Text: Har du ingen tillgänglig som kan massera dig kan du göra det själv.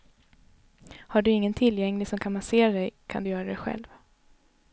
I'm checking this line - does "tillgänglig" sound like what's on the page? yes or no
yes